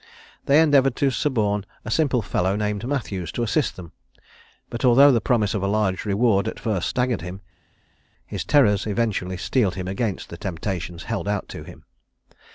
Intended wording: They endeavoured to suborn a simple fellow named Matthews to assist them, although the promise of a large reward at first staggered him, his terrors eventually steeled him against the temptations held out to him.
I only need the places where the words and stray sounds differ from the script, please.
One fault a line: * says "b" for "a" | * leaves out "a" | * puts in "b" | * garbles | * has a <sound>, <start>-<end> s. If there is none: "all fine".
* puts in "but"